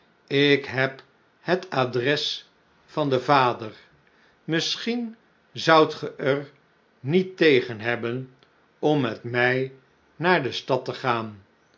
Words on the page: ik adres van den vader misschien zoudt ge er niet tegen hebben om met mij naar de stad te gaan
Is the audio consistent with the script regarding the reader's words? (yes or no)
no